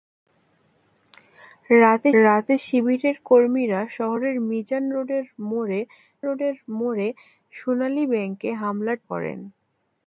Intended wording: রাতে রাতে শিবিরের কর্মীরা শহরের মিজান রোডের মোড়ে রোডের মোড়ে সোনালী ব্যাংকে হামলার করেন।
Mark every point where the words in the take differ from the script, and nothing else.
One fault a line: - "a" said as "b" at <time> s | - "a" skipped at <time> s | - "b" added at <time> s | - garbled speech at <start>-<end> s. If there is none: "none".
none